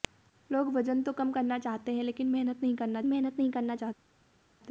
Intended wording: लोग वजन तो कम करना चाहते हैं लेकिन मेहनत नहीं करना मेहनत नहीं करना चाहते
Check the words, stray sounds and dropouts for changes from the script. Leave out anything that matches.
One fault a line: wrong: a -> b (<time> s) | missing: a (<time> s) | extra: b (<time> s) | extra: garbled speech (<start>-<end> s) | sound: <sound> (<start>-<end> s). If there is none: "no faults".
no faults